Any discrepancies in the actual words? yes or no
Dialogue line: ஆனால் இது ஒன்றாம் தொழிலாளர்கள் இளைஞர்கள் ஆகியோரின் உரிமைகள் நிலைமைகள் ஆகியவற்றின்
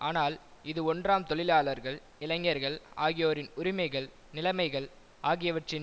no